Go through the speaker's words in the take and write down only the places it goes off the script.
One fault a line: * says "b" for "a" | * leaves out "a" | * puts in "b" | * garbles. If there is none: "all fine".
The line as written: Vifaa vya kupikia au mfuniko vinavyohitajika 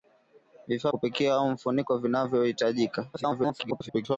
* leaves out "vya"
* garbles